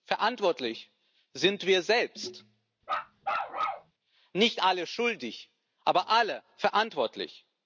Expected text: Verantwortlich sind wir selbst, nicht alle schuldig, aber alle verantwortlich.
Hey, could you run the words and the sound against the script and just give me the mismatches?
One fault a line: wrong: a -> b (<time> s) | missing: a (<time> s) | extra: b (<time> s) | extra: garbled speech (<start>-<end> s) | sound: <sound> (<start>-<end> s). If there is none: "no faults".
sound: bark (2.8-3.9 s)